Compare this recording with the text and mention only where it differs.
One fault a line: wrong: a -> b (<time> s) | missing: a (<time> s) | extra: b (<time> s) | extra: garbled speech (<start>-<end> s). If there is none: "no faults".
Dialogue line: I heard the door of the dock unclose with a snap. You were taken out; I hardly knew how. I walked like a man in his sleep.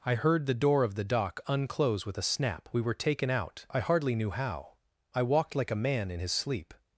wrong: You -> We (2.7 s)